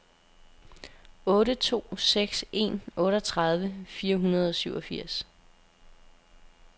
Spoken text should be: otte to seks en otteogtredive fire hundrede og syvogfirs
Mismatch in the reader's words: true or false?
false